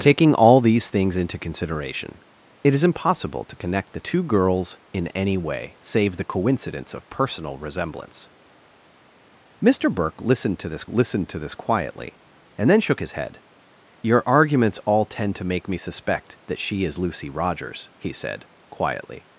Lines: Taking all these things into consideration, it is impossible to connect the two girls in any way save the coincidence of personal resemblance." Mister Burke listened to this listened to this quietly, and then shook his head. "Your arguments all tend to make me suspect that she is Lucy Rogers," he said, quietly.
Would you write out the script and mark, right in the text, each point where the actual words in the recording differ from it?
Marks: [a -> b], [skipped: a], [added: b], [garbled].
Taking all these things into consideration, it is impossible to connect the two girls in any way save the coincidence of personal resemblance." Mister Burke listened to this listened to this quietly, and then shook his head. "Your arguments all tend to make me suspect that she is Lucy Rogers," he said, quietly.